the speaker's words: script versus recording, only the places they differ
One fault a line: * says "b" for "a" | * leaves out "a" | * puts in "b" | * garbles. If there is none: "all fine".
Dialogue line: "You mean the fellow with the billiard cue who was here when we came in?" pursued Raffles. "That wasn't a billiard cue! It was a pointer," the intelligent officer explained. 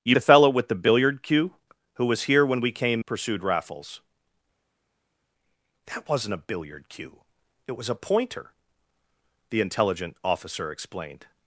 * leaves out "mean"
* leaves out "in"